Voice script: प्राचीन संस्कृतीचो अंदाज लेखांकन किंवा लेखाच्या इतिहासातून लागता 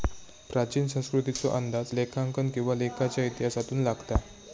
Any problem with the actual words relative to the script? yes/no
no